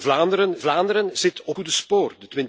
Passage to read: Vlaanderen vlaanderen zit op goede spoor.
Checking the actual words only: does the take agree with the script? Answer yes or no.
yes